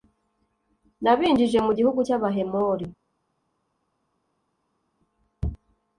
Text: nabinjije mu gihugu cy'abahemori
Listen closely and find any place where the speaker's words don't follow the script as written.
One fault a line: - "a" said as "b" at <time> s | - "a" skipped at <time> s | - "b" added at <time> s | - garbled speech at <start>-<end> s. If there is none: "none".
none